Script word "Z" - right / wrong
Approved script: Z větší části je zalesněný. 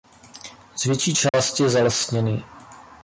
right